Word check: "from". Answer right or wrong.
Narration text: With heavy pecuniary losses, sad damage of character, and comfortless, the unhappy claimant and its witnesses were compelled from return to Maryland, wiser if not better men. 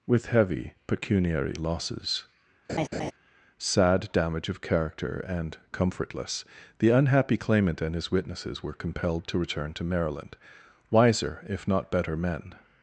wrong